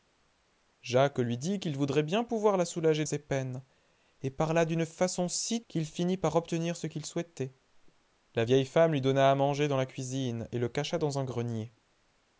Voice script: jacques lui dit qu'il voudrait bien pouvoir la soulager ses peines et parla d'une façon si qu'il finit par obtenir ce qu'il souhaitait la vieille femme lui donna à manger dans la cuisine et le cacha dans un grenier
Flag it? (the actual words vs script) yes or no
no